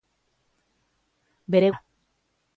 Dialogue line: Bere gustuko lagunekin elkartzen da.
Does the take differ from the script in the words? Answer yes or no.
yes